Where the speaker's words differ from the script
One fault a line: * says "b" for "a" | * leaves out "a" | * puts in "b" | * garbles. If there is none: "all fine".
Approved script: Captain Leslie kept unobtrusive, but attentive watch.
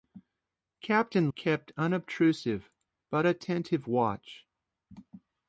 * leaves out "Leslie"